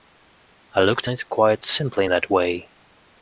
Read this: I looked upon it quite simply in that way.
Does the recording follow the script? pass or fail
fail